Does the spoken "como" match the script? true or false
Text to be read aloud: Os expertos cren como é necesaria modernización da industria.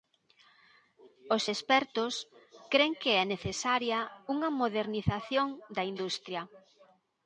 false